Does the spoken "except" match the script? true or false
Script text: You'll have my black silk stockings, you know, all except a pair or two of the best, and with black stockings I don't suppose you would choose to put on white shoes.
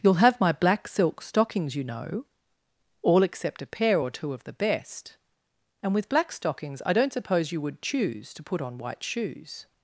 true